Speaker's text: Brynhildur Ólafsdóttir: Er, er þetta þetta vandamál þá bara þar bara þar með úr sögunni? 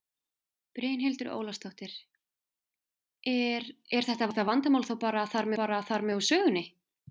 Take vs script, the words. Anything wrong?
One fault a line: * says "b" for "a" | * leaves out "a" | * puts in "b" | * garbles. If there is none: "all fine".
all fine